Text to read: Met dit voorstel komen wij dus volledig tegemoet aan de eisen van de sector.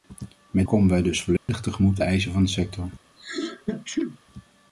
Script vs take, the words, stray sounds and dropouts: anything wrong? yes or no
yes